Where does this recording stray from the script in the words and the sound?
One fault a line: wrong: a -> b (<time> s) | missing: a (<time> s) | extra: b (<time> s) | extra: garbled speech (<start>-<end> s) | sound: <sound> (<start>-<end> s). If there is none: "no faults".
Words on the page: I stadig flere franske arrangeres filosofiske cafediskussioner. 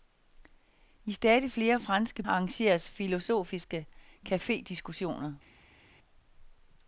no faults